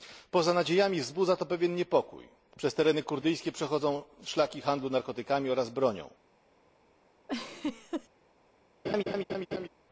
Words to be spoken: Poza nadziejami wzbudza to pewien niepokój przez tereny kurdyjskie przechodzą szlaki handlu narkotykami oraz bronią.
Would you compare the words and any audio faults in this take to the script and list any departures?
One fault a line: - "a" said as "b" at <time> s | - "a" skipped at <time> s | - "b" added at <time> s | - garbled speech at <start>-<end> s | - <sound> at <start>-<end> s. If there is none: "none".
- laugh at 7.3-8.1 s
- laugh at 8.8-9.7 s